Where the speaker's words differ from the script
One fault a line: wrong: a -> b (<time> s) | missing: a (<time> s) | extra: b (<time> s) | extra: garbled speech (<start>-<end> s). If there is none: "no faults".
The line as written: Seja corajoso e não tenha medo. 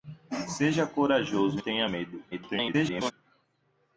missing: não (1.6 s)
extra: garbled speech (2.3-3.1 s)